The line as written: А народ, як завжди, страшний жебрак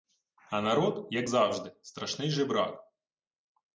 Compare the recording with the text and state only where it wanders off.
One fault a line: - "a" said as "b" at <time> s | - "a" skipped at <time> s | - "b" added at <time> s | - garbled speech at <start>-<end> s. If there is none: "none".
none